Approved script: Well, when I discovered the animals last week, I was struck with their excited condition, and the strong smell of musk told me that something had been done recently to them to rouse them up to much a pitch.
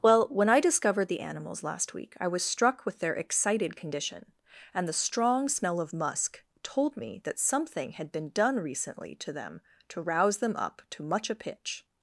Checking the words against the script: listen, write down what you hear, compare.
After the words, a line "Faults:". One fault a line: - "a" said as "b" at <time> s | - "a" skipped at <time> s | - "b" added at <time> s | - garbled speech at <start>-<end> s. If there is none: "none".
Well, when I discovered the animals last week, I was struck with their excited condition, and the strong smell of musk told me that something had been done recently to them to rouse them up to much a pitch.
Faults:
none